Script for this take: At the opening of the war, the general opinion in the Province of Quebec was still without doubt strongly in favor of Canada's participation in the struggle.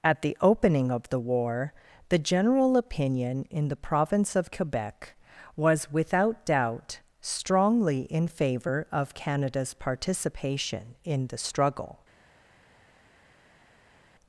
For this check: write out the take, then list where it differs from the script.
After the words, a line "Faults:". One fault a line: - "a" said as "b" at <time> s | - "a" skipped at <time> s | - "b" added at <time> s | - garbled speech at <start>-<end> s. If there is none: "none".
At the opening of the war, the general opinion in the Province of Quebec was without doubt strongly in favor of Canada's participation in the struggle.
Faults:
- "still" skipped at 5.9 s